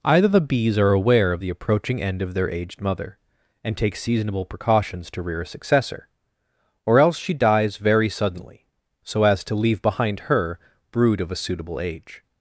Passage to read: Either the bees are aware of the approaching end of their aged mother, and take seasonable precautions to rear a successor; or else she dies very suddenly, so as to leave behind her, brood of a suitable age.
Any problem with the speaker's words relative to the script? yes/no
no